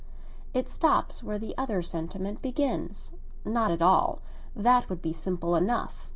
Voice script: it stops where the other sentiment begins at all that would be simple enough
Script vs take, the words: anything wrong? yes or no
yes